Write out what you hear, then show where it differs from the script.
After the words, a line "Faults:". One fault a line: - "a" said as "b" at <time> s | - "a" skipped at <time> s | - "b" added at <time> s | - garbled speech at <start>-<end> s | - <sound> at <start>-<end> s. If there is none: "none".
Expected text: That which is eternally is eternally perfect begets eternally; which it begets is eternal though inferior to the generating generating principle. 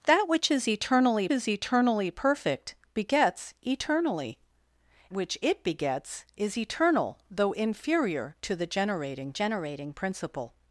That which is eternally is eternally perfect begets eternally; which it begets is eternal though inferior to the generating generating principle.
Faults:
none